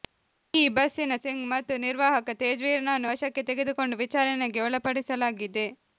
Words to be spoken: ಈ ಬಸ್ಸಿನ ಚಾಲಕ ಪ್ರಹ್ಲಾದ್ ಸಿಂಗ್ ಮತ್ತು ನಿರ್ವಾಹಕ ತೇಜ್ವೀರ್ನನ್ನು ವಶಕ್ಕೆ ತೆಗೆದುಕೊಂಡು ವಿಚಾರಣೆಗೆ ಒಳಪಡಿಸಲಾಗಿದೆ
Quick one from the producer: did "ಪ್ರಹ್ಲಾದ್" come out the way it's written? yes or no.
no